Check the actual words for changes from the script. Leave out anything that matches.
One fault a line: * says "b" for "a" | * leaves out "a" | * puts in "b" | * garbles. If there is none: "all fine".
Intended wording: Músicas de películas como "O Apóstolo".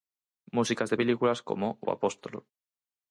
all fine